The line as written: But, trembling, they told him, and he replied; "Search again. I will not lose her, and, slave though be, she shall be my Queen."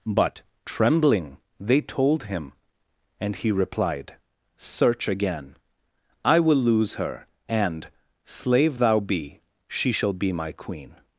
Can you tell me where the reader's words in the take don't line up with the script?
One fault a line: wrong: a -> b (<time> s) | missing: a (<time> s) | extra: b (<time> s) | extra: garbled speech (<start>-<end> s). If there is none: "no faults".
missing: not (6.6 s)
wrong: though -> thou (8.8 s)